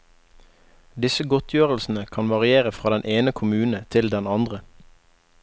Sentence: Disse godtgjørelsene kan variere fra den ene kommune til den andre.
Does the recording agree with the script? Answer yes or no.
yes